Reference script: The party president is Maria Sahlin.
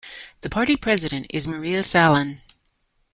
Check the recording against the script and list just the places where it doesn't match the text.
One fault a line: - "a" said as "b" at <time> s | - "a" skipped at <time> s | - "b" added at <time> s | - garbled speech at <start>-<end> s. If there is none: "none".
none